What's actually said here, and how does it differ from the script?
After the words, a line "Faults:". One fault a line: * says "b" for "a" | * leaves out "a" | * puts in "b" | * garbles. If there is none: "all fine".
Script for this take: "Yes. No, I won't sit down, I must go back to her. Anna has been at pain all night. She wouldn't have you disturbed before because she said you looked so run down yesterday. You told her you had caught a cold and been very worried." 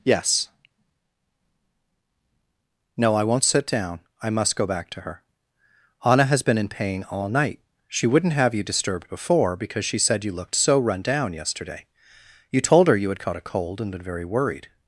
"Yes. No, I won't sit down, I must go back to her. Anna has been in pain all night. She wouldn't have you disturbed before because she said you looked so run down yesterday. You told her you had caught a cold and been very worried."
Faults:
* says "in" for "at"